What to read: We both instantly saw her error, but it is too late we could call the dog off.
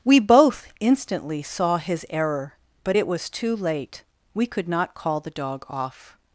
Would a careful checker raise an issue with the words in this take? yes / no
yes